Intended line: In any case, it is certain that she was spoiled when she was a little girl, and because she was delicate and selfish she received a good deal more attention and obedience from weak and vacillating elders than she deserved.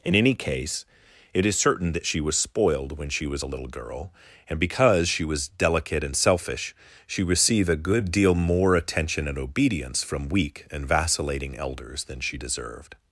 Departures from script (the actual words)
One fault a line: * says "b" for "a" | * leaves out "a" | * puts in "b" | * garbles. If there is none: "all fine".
all fine